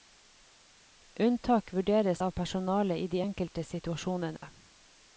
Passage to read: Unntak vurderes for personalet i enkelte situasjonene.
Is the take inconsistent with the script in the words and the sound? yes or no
yes